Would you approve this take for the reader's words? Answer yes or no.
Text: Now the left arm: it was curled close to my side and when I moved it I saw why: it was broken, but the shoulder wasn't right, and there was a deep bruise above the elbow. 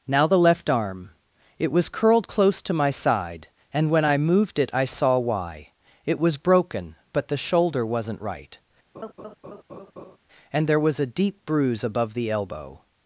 yes